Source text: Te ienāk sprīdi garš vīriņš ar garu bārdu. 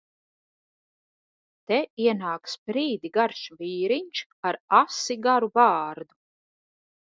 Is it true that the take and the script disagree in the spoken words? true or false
true